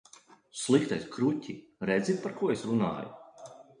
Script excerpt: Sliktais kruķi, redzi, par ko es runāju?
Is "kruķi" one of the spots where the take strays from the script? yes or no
no